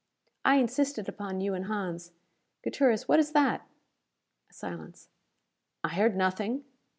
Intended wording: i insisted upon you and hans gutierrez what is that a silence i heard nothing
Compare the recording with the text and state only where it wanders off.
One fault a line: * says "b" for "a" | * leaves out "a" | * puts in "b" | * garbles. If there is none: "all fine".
all fine